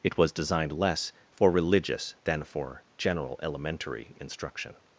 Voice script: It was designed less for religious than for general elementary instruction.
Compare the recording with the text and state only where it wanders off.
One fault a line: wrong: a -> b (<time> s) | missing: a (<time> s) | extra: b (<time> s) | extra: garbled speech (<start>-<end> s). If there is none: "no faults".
no faults